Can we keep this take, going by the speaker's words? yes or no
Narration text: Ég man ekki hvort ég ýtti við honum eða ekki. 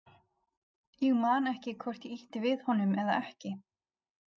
yes